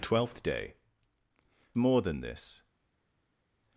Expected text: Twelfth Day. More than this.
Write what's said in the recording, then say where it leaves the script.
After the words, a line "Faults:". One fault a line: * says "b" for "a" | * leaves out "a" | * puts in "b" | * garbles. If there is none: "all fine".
Twelfth Day. More than this.
Faults:
all fine